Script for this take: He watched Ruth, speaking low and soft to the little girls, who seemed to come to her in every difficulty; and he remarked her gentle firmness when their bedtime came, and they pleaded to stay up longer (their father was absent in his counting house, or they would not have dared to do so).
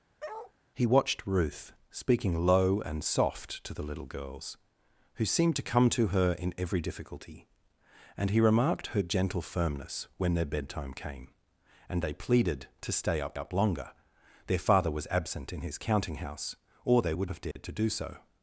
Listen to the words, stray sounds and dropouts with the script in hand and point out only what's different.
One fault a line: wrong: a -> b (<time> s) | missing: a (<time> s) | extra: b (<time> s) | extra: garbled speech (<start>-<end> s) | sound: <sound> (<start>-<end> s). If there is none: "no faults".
sound: bark (0.2-0.5 s)
extra: up (13.4 s)
missing: not (17.3 s)
sound: dropout (17.5-17.6 s)